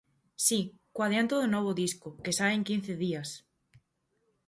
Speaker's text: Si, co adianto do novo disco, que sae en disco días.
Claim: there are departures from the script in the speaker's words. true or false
true